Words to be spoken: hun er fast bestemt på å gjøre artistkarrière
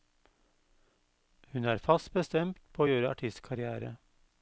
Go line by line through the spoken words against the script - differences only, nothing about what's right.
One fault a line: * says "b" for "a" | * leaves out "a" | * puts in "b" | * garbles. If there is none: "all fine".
all fine